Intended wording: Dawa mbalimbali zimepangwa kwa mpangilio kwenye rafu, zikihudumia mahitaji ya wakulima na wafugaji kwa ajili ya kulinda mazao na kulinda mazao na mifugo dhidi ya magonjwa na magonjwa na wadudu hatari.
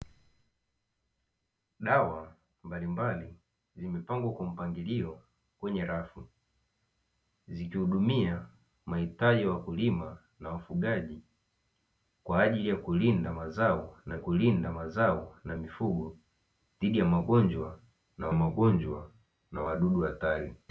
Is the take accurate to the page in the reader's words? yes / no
yes